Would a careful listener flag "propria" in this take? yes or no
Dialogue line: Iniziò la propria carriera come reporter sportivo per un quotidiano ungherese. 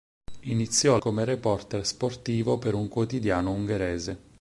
yes